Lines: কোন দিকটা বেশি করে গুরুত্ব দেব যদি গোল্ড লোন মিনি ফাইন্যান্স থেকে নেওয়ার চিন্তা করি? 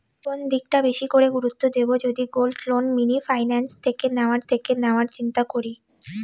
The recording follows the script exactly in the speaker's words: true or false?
false